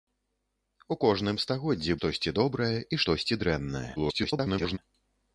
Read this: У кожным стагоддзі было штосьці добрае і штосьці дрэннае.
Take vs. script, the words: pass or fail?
fail